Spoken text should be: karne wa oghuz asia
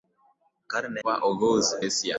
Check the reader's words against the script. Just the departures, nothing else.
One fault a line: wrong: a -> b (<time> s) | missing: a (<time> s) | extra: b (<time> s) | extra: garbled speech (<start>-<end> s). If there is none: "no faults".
no faults